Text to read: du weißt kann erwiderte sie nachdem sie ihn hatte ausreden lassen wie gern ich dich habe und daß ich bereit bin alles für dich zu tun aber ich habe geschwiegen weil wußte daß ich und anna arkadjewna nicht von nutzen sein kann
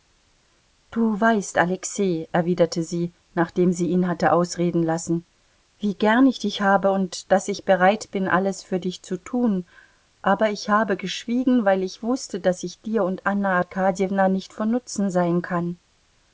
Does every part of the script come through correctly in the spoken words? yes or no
no